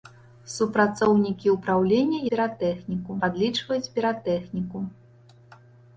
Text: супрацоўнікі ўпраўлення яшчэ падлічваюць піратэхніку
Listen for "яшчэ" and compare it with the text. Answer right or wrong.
wrong